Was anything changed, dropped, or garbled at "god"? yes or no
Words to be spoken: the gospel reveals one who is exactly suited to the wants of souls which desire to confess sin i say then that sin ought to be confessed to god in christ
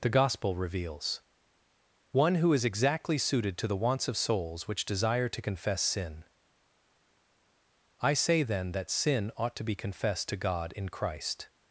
no